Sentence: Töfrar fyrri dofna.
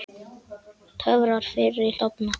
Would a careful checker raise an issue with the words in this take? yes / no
no